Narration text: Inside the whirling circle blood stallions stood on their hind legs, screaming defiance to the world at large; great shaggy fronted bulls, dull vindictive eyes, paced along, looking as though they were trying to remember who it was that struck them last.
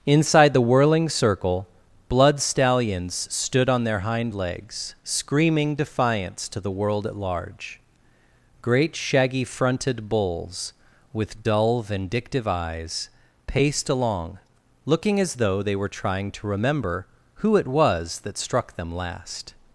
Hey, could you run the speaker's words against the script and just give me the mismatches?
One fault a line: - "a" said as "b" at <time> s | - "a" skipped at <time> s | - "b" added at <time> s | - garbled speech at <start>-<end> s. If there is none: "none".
- "with" added at 11.1 s